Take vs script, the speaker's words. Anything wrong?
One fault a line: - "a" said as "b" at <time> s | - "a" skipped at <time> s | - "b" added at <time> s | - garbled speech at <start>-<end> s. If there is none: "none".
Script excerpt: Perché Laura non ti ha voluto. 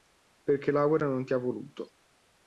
none